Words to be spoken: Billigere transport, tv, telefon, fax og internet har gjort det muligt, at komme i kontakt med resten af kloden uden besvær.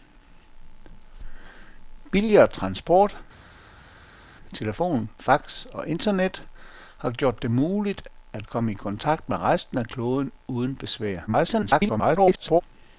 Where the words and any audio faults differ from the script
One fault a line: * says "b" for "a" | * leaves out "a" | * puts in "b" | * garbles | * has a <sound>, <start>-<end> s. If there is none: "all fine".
* leaves out "tv"
* garbles